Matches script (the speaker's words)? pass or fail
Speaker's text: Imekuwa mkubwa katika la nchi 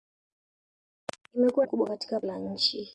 pass